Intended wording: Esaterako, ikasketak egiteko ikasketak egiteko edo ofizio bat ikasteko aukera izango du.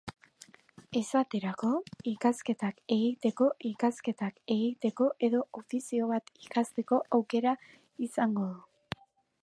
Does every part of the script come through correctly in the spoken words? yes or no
yes